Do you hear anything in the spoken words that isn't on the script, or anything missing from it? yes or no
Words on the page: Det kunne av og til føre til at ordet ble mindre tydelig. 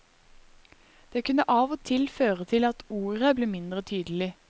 no